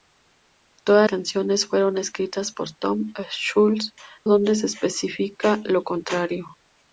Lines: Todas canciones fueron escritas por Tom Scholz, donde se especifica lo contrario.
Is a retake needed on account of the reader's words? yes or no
no